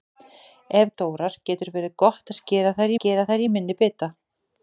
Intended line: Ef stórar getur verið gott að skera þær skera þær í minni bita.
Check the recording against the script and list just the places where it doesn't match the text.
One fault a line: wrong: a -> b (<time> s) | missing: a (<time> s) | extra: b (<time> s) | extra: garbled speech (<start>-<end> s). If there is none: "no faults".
no faults